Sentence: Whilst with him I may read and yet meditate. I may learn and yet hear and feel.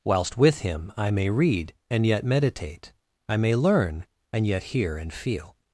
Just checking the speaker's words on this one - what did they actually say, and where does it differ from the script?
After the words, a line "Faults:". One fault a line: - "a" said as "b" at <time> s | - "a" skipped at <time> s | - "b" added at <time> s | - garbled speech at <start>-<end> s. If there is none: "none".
Whilst with him I may read and yet meditate. I may learn and yet hear and feel.
Faults:
none